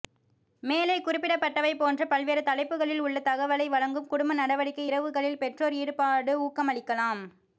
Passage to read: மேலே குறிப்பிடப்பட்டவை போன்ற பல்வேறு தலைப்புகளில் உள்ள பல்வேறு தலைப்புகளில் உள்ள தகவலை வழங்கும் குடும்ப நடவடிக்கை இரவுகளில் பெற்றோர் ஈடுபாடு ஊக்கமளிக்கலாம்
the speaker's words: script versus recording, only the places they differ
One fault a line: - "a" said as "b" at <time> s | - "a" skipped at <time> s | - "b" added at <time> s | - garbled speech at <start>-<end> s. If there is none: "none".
- "பல்வேறு தலைப்புகளில் உள்ள" skipped at 3.2 s